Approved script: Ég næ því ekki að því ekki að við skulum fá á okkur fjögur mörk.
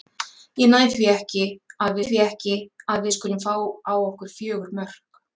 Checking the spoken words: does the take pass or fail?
pass